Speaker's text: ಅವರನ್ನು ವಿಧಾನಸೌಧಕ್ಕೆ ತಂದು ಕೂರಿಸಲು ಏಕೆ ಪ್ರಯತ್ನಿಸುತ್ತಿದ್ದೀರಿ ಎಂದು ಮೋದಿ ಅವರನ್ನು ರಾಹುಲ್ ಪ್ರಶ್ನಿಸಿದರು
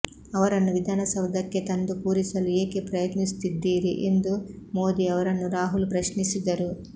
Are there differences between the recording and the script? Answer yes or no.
no